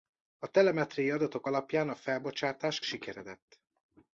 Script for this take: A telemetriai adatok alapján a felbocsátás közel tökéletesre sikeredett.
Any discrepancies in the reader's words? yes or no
yes